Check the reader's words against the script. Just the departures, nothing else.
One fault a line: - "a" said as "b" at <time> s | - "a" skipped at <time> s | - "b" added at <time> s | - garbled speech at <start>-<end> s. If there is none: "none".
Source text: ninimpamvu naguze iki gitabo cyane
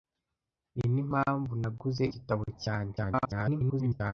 - "iki" skipped at 2.0 s
- garbled speech at 3.0-4.1 s